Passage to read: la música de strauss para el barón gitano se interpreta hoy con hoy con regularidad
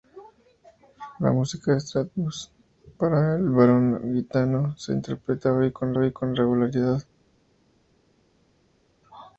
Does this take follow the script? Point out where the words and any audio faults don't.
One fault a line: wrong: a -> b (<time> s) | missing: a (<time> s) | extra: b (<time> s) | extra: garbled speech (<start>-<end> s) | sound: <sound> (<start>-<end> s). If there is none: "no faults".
no faults